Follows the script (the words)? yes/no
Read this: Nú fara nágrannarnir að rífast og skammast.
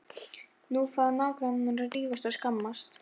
yes